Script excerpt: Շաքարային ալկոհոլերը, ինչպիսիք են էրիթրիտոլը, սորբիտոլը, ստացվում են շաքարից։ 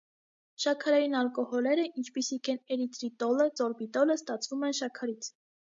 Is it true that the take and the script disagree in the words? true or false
false